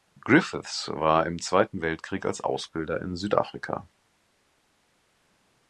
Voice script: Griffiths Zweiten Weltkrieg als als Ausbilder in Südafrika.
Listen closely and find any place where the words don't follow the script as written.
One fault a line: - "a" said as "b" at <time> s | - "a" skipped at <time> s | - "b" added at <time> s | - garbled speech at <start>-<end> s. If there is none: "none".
- "war im" added at 0.9 s
- "als" skipped at 2.4 s